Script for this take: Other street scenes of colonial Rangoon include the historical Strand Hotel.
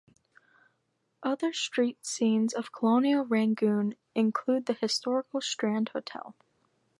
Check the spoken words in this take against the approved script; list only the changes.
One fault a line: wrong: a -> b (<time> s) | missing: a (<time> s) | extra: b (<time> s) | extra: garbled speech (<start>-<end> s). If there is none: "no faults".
no faults